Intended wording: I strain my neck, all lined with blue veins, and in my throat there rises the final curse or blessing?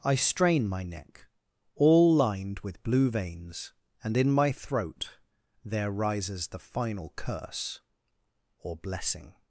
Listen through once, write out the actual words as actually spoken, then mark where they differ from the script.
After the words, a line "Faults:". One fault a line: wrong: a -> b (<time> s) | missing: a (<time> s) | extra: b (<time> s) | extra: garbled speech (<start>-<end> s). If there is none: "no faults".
I strain my neck, all lined with blue veins, and in my throat there rises the final curse or blessing?
Faults:
no faults